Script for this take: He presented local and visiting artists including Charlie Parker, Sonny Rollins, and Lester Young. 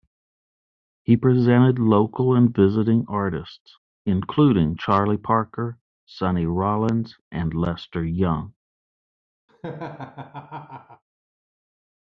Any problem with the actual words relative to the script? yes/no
no